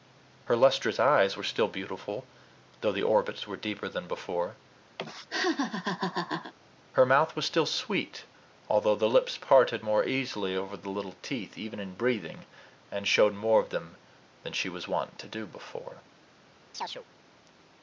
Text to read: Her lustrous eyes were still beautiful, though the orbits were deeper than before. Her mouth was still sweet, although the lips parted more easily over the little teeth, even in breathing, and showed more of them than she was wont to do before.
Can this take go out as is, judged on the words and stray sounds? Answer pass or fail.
fail